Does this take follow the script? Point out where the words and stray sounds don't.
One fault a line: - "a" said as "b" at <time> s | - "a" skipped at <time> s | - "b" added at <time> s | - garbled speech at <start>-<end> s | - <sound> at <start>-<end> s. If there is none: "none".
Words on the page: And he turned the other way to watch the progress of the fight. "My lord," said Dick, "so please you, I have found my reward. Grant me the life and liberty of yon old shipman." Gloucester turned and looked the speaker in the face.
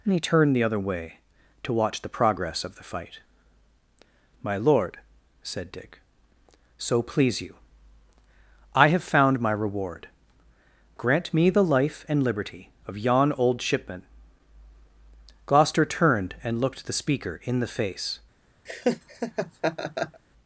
- laugh at 18.7-20.2 s